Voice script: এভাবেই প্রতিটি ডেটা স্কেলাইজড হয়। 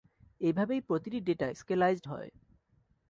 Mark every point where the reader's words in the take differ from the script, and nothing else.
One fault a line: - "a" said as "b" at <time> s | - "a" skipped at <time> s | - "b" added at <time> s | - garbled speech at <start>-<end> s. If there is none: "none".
none